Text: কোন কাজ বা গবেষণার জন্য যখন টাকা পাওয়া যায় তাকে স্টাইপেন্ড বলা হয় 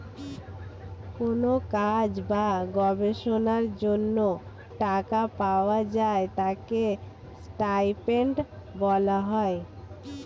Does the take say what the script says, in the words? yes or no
no